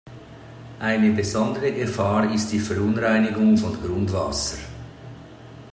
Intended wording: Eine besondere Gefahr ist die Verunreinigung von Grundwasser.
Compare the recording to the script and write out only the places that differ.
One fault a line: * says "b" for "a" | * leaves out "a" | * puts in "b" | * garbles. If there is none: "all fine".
all fine